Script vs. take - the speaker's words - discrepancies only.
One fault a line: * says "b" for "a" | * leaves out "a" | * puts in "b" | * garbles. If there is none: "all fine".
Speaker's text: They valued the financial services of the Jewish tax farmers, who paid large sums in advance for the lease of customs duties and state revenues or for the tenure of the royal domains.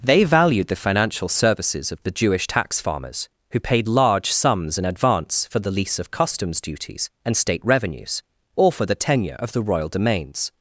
all fine